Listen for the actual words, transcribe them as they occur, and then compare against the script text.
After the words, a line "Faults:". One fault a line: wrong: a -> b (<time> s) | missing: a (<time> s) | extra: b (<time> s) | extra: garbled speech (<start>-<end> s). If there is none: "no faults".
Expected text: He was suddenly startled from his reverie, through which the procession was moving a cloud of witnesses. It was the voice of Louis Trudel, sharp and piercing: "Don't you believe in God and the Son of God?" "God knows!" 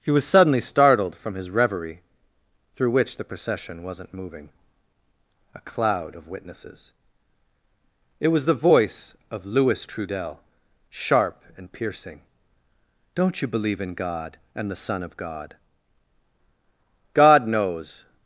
He was suddenly startled from his reverie, through which the procession wasn't moving a cloud of witnesses. It was the voice of Louis Trudel, sharp and piercing: "Don't you believe in God and the Son of God?" "God knows!"
Faults:
wrong: was -> wasn't (3.8 s)